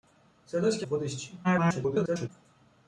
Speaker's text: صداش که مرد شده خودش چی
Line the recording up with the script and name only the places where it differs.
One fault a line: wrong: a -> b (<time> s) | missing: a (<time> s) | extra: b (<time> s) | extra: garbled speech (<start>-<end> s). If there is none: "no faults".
missing: مرد شده (0.9 s)
extra: garbled speech (1.4-2.3 s)